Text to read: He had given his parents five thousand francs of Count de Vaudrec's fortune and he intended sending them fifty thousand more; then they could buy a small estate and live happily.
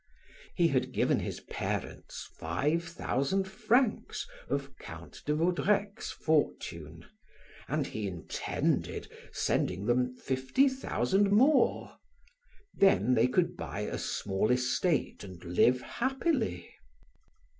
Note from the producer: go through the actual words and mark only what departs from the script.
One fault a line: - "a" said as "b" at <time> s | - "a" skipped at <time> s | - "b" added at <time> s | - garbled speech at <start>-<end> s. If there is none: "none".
none